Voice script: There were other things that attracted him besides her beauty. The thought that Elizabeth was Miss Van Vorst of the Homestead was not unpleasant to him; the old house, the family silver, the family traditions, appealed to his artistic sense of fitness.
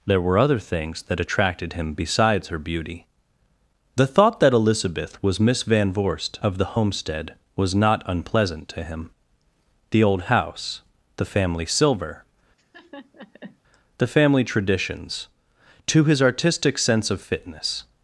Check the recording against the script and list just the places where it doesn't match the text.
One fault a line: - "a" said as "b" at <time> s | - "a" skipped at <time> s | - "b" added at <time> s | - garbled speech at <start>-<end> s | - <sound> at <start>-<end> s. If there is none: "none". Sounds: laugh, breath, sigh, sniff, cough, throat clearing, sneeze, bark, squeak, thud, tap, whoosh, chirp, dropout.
- laugh at 12.6-13.6 s
- "appealed" skipped at 15.3 s